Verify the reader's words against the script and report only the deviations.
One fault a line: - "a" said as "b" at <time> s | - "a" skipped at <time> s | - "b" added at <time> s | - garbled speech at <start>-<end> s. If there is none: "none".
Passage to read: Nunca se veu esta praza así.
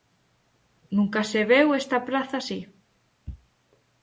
none